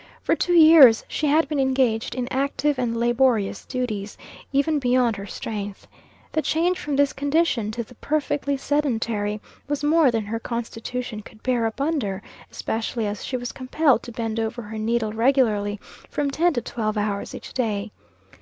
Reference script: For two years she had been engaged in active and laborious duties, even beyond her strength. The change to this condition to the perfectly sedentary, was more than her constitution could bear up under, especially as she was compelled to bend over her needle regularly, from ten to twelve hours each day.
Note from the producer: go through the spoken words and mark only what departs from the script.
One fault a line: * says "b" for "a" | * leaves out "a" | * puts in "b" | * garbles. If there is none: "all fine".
* says "from" for "to"